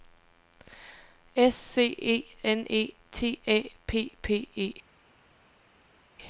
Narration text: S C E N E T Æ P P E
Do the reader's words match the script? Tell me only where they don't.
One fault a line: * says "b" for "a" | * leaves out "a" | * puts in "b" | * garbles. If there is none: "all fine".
all fine